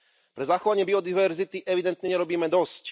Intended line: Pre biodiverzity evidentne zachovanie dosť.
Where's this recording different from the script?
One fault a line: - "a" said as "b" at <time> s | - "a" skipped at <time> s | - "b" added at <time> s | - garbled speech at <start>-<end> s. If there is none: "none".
- "zachovanie" added at 0.5 s
- "zachovanie" said as "nerobíme" at 2.1 s